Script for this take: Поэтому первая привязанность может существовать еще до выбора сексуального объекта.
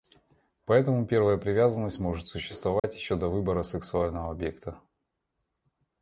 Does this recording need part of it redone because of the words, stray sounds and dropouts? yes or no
yes